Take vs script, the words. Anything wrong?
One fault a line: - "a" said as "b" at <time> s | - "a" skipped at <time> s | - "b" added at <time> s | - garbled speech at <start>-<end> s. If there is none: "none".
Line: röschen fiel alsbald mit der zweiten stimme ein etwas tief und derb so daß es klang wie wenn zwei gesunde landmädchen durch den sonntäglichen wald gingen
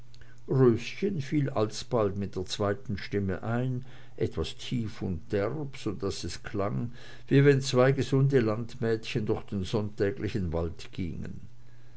none